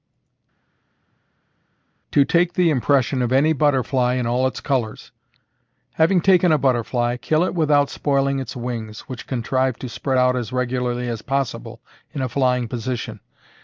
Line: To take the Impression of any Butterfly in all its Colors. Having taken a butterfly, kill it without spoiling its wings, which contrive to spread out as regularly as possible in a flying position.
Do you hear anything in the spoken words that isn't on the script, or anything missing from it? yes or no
no